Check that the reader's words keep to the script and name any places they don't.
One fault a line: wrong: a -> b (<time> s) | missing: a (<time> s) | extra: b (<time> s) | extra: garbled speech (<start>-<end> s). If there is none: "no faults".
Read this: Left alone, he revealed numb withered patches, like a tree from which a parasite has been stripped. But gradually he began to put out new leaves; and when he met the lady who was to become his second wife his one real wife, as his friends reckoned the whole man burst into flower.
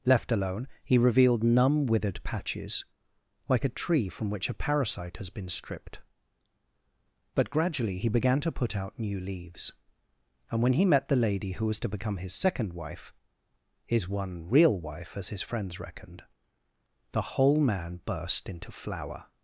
no faults